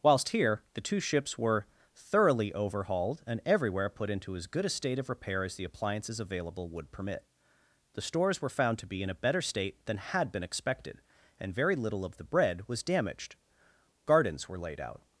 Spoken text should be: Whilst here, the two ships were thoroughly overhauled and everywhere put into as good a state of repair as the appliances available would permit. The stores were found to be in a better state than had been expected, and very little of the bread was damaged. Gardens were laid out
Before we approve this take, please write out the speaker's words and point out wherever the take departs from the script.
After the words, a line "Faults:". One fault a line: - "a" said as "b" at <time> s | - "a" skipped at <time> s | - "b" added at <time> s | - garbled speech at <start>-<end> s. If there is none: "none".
Whilst here, the two ships were thoroughly overhauled and everywhere put into as good a state of repair as the appliances available would permit. The stores were found to be in a better state than had been expected, and very little of the bread was damaged. Gardens were laid out
Faults:
none